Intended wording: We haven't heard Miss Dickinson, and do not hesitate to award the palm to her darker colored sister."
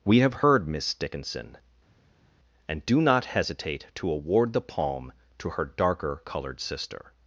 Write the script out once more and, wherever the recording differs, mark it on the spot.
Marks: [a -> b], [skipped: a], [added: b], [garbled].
We [haven't -> have] heard Miss Dickinson, and do not hesitate to award the palm to her darker colored sister."